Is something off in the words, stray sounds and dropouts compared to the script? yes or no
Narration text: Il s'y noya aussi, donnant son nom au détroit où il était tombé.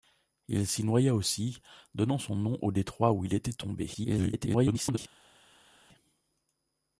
yes